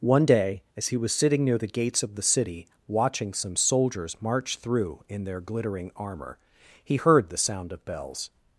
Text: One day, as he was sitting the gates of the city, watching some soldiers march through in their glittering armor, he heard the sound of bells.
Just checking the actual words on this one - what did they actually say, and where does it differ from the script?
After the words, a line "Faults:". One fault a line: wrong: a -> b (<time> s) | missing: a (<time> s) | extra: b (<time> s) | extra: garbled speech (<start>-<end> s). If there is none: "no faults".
One day, as he was sitting near the gates of the city, watching some soldiers march through in their glittering armor, he heard the sound of bells.
Faults:
extra: near (1.4 s)